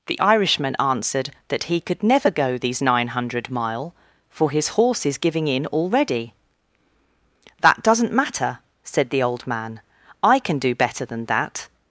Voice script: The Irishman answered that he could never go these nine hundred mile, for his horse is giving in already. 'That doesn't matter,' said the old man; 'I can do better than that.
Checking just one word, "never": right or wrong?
right